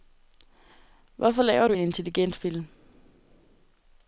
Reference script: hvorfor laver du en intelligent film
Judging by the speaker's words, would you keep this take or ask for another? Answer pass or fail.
pass